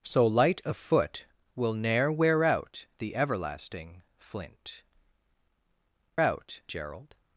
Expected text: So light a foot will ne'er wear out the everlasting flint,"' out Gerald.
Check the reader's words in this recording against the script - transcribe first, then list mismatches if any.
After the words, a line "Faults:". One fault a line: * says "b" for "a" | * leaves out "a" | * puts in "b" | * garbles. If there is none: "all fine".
So light a foot will ne'er wear out the everlasting flint,"' out Gerald.
Faults:
all fine